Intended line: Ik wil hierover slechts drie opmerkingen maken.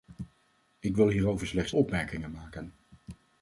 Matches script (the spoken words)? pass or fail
fail